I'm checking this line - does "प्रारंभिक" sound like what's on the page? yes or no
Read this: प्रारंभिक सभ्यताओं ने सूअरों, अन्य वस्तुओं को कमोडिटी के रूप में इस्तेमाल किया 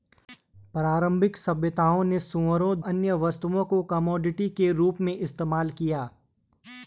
yes